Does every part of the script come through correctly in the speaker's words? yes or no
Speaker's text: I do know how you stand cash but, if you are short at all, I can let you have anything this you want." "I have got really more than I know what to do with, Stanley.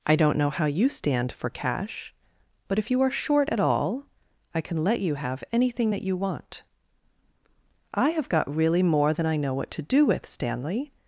no